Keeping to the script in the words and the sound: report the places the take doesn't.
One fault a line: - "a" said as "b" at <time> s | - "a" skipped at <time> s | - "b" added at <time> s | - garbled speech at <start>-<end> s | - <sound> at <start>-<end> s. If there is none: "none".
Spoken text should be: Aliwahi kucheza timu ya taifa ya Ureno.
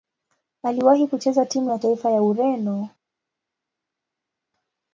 none